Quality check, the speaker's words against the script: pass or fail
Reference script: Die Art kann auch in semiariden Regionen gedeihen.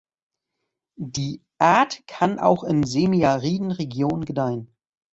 pass